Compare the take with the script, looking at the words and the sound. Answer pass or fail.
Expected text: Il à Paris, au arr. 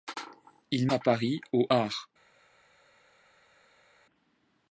pass